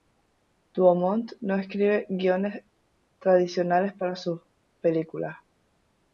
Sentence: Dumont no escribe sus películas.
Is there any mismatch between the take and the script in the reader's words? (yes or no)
yes